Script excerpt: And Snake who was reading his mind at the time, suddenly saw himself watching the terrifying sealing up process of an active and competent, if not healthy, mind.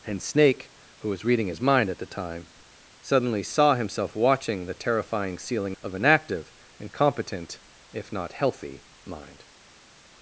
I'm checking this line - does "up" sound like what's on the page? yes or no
no